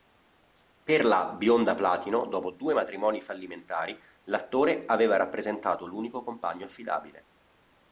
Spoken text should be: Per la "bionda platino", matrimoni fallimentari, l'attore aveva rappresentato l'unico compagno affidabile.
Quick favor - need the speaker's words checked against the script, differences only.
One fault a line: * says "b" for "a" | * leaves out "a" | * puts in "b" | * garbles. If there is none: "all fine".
* puts in "dopo due"